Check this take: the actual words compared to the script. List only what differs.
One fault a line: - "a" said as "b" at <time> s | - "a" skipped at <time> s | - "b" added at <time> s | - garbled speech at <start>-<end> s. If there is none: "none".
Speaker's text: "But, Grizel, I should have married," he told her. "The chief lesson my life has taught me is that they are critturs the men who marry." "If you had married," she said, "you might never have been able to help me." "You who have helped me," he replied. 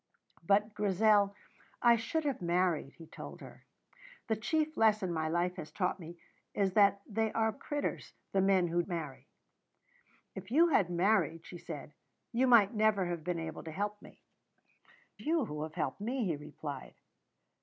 none